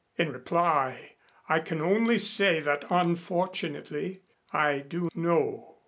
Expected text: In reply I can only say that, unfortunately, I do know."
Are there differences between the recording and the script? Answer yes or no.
no